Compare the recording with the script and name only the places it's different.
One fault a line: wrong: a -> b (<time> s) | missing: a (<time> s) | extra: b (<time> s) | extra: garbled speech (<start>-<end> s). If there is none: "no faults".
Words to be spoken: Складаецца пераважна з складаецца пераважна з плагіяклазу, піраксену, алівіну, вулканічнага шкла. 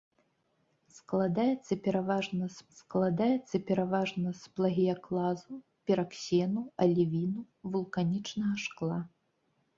no faults